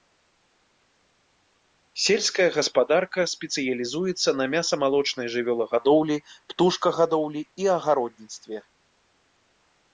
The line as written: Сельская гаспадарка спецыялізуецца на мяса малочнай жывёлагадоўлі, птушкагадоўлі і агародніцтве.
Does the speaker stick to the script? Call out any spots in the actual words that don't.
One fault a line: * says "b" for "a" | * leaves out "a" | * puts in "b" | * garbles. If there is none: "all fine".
all fine